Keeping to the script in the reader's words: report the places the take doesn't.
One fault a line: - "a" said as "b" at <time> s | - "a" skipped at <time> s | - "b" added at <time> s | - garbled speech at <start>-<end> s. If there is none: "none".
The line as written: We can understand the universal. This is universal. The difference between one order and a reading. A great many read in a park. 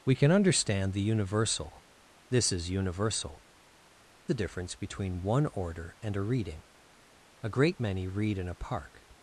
none